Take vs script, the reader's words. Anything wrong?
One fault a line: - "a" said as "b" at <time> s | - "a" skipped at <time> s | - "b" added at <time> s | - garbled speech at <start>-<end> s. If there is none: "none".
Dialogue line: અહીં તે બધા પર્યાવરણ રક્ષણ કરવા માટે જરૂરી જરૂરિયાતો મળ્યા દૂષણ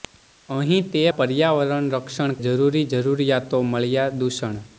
- "બધા" skipped at 1.0 s
- "કરવા માટે" skipped at 2.4 s